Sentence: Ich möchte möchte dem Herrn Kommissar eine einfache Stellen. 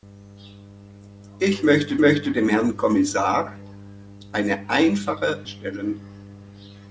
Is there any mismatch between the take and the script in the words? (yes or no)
no